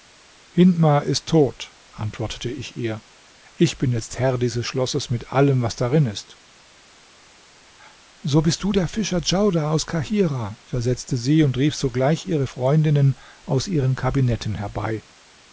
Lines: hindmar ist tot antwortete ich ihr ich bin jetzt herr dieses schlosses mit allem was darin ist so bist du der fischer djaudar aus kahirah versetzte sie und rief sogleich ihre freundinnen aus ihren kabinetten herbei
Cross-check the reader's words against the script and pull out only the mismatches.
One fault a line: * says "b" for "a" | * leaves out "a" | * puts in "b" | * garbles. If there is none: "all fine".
all fine